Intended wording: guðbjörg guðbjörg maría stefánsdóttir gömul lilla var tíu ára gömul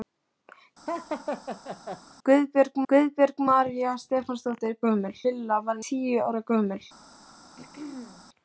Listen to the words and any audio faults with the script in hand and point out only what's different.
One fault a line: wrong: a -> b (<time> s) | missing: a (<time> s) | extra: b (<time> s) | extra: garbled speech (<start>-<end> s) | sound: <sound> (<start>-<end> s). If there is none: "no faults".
sound: laugh (0.9-2.0 s)
sound: throat clearing (7.6-8.3 s)